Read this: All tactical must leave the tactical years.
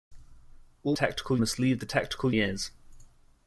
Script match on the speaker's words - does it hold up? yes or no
yes